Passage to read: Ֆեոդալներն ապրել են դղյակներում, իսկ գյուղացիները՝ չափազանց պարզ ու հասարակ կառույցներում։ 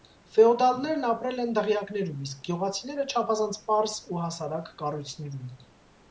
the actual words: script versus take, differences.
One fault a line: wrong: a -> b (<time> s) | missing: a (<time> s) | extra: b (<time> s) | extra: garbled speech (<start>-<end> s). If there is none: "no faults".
no faults